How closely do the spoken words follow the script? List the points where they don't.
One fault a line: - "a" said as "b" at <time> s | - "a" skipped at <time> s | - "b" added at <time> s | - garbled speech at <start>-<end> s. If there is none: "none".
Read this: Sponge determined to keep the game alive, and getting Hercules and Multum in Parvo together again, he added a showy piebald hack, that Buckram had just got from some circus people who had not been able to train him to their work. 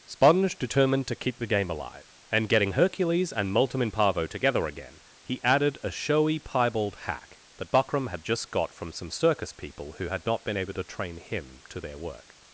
none